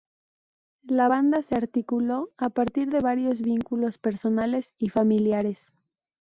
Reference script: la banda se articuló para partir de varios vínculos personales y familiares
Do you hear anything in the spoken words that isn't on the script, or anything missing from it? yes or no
yes